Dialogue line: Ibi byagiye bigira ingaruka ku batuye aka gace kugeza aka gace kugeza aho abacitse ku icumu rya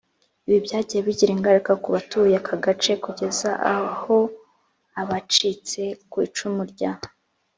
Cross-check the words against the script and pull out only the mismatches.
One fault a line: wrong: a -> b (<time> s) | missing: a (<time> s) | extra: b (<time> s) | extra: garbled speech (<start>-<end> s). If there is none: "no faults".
missing: aka gace kugeza (3.5 s)